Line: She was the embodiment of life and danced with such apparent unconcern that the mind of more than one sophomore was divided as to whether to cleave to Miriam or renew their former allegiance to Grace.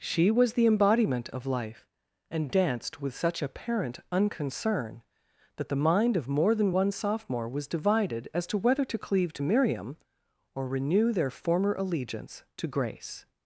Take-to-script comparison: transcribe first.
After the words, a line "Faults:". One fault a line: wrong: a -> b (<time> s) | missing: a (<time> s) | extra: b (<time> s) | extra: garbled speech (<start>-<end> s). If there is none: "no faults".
She was the embodiment of life and danced with such apparent unconcern that the mind of more than one sophomore was divided as to whether to cleave to Miriam or renew their former allegiance to Grace.
Faults:
no faults